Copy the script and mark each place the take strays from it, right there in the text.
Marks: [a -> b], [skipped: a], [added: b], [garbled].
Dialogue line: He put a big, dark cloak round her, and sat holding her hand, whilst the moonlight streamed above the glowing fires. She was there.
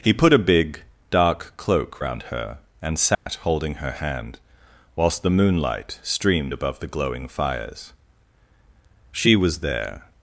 He put a big, dark cloak round her, and sat holding her hand, whilst the moonlight streamed above the glowing fires. She was there.